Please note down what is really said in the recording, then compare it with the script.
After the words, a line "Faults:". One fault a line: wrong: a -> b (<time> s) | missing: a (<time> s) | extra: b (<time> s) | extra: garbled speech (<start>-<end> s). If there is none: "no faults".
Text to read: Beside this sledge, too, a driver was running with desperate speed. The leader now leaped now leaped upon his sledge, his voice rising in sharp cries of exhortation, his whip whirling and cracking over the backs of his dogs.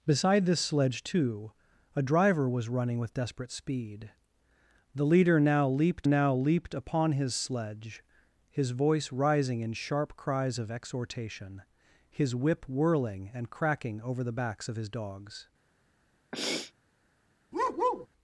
Beside this sledge, too, a driver was running with desperate speed. The leader now leaped now leaped upon his sledge, his voice rising in sharp cries of exhortation, his whip whirling and cracking over the backs of his dogs.
Faults:
no faults